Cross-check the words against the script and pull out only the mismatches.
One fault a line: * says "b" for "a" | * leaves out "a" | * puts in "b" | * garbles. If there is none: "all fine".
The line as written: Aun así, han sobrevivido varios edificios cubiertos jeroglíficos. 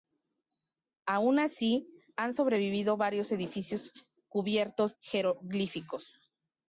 all fine